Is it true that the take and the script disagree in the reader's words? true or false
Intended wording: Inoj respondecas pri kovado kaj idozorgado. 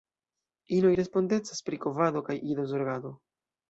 false